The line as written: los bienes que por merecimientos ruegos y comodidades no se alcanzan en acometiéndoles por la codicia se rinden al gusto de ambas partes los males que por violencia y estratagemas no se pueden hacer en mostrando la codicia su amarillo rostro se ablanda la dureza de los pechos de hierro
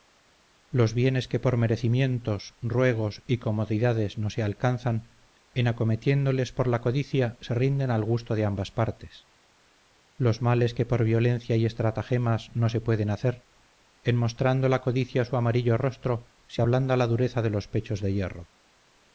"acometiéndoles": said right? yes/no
yes